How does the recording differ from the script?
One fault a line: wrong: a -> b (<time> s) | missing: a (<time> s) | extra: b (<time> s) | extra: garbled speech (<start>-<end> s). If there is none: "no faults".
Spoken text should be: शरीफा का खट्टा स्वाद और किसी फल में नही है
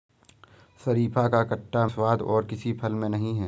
no faults